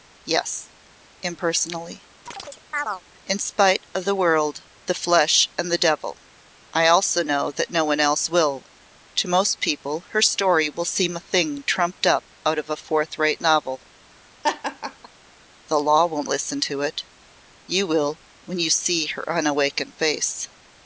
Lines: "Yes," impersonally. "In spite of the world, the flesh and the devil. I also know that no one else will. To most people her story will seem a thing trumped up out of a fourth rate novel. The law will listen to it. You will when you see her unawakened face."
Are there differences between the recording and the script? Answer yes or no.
no